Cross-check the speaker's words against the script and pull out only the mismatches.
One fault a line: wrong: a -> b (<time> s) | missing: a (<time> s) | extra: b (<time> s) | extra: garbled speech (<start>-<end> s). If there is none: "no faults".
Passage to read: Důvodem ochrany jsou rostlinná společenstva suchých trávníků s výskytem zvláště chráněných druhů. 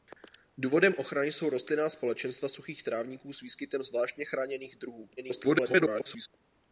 extra: garbled speech (5.2-6.3 s)